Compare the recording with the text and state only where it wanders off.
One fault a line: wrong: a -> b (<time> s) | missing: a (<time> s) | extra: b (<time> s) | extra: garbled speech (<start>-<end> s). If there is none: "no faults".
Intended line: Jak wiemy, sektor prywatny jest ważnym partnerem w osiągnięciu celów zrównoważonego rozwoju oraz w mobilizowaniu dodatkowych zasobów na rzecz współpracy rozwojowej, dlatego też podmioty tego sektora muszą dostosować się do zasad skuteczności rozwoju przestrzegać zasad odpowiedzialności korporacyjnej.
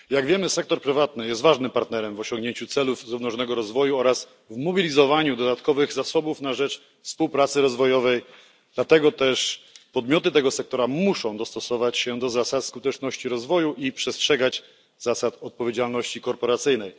extra: i (13.7 s)